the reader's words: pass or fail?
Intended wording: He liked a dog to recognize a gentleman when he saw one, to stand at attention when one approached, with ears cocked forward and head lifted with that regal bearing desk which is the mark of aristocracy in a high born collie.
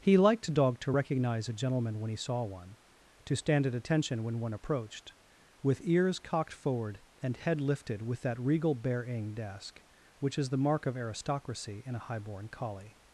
pass